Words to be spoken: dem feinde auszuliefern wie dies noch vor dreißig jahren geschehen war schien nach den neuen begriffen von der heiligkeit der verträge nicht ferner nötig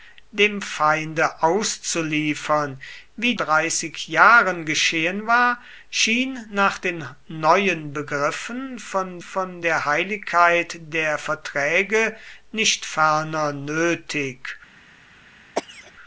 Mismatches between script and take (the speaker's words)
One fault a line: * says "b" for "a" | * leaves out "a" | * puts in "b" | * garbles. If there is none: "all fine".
* leaves out "dies noch vor"
* puts in "von"